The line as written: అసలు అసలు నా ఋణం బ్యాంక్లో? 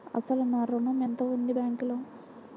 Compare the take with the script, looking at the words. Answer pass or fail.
fail